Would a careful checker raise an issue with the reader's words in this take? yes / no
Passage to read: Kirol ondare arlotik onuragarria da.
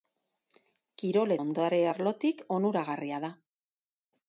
no